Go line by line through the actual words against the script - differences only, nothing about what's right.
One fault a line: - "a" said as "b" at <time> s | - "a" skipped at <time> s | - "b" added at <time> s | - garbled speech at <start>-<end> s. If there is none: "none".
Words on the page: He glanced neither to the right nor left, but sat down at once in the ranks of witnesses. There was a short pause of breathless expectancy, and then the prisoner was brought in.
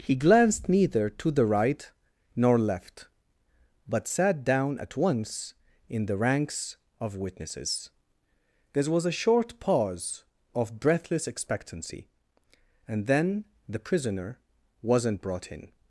- "was" said as "wasn't" at 14.8 s